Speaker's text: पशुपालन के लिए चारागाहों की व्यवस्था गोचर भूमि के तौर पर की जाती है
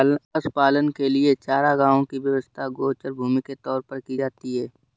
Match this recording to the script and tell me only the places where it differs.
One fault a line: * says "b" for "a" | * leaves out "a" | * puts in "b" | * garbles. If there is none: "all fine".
all fine